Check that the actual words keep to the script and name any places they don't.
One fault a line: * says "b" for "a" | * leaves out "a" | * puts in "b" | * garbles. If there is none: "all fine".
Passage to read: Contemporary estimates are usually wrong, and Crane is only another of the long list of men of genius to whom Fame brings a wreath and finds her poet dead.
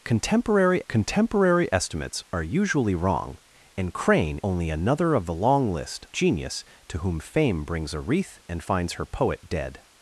* puts in "contemporary"
* leaves out "is"
* leaves out "of men of"